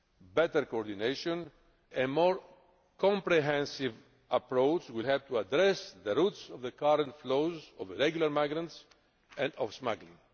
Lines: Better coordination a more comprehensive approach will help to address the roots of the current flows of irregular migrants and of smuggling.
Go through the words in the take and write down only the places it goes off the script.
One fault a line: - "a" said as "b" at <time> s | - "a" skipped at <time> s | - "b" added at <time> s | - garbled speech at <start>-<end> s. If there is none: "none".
none